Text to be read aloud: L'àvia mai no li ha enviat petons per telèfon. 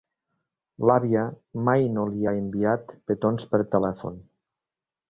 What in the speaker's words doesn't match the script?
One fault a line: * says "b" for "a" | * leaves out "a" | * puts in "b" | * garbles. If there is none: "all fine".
all fine